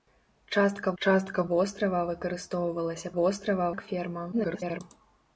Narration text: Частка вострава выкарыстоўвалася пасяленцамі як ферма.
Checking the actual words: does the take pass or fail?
fail